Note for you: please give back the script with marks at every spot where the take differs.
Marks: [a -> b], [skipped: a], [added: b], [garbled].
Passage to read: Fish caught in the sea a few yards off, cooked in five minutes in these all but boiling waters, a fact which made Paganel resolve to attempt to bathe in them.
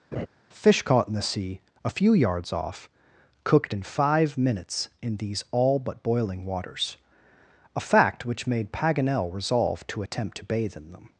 Fish caught in the sea a few yards off, cooked in five minutes in these all but boiling waters, a fact which made Paganel resolve to attempt to bathe in them.